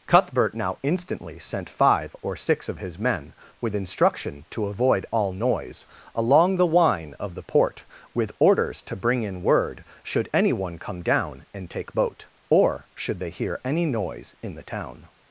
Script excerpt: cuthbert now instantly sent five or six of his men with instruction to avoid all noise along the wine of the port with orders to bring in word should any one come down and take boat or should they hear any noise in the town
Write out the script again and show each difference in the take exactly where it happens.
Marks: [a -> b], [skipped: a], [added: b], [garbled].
cuthbert now instantly sent five or six of his men with instruction to avoid all noise along the wine of the port with orders to bring in word should any one come down and take boat or should they hear any noise in the town